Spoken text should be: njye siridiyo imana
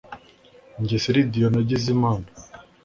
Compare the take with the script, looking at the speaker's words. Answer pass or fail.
fail